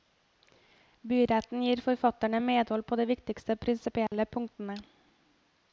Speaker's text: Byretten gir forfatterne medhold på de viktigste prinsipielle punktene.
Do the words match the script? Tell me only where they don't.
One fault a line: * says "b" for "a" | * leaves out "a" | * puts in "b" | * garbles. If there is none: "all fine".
all fine